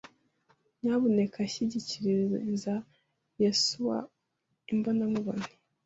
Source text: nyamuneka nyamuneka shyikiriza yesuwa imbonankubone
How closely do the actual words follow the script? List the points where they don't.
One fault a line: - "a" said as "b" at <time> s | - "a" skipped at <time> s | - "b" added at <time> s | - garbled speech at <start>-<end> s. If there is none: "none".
- "nyamuneka" skipped at 1.4 s